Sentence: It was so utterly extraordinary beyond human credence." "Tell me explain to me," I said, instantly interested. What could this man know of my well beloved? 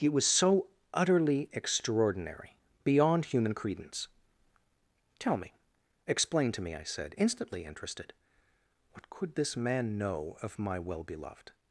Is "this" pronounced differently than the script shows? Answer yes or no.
no